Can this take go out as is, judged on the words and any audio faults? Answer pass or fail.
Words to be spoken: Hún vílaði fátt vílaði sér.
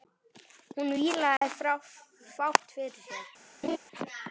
fail